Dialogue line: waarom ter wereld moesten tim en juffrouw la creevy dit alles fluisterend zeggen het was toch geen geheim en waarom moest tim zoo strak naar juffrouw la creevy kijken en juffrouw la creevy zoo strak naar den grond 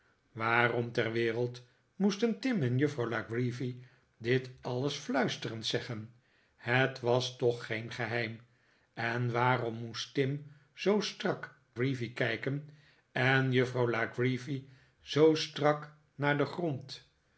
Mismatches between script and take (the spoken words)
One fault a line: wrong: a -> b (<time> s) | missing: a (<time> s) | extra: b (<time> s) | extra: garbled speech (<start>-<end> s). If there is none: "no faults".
missing: naar juffrouw la (11.6 s)